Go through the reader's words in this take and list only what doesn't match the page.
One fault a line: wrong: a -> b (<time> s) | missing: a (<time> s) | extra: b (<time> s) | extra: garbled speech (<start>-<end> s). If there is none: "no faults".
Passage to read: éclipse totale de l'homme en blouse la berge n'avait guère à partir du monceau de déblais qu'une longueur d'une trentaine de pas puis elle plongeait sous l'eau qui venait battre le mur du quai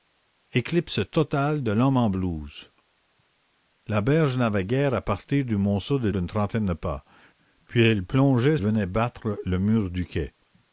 missing: déblais qu'une longueur (6.1 s)
missing: sous l'eau qui (8.6 s)